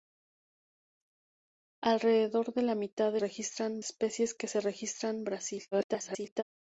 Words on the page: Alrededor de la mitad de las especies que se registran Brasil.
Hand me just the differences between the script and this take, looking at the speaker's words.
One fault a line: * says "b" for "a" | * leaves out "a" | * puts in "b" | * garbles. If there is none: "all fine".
* says "registran" for "las"
* garbles